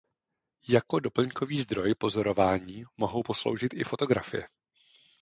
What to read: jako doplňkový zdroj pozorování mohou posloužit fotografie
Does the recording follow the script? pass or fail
fail